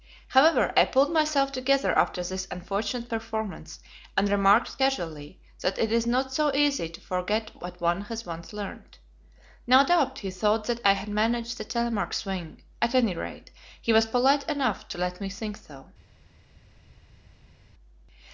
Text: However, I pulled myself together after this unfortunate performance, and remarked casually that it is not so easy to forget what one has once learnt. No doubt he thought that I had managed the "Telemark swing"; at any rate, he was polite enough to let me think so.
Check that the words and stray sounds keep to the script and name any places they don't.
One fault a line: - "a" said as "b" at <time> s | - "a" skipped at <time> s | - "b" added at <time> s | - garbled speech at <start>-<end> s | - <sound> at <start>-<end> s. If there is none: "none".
none